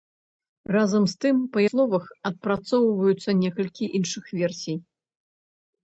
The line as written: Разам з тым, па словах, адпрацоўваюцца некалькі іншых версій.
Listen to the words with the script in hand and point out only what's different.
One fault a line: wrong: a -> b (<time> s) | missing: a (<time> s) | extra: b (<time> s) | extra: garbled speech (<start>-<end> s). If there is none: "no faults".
no faults